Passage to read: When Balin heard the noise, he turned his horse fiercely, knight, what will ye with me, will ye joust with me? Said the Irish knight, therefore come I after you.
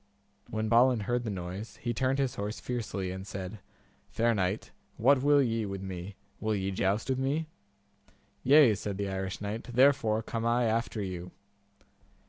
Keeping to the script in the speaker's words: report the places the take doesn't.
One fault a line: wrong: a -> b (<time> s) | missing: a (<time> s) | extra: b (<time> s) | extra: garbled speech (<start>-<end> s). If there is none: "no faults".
extra: and said Fair (3.1 s)
extra: Yea (8.4 s)